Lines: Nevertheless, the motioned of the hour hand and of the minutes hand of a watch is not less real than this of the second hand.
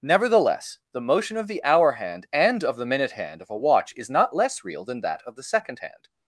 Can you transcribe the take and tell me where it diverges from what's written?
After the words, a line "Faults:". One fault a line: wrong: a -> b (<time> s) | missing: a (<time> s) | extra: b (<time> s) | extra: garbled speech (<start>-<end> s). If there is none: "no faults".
Nevertheless, the motion of the hour hand and of the minute hand of a watch is not less real than that of the second hand.
Faults:
wrong: motioned -> motion (1.0 s)
wrong: minutes -> minute (2.9 s)
wrong: this -> that (5.0 s)